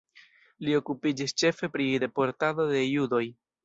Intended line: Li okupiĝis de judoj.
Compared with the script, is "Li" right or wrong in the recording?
right